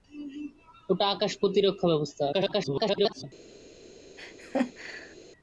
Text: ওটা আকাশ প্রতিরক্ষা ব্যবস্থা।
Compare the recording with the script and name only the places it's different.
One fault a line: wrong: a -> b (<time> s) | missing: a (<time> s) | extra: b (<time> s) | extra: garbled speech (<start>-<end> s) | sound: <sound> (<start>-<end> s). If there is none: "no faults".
extra: garbled speech (2.3-3.2 s)
sound: laugh (4.2-5.2 s)